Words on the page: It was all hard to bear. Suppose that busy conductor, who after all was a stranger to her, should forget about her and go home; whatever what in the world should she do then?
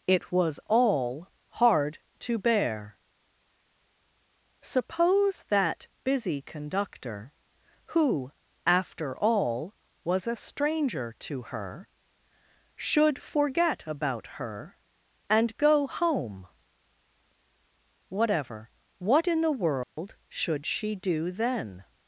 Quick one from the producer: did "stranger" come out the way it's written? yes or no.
yes